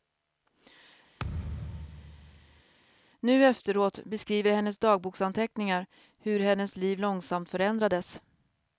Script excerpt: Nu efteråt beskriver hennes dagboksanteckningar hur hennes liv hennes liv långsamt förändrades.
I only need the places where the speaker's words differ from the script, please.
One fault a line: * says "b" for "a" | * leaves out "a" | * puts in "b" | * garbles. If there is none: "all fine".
* leaves out "hennes liv"